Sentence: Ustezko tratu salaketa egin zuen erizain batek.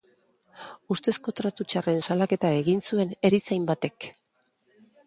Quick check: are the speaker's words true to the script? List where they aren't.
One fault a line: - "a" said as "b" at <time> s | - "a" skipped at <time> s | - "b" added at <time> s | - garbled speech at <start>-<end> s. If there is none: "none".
- "txarren" added at 1.7 s